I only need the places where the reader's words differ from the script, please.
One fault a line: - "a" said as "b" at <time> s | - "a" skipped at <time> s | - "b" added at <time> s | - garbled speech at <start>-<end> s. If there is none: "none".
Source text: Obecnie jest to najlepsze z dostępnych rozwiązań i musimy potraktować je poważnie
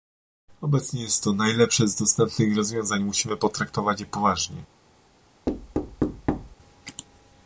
none